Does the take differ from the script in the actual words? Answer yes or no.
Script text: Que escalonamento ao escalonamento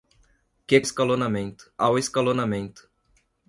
no